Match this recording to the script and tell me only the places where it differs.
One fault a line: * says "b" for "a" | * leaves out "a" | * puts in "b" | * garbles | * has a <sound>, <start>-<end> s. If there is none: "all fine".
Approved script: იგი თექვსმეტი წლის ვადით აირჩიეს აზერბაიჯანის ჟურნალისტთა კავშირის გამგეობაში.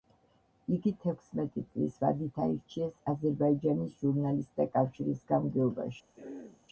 * has a throat clearing, 6.2-6.7 s